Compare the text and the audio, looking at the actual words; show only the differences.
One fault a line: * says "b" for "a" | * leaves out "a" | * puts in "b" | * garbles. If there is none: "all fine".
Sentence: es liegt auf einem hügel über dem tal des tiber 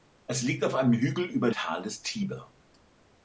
* leaves out "dem"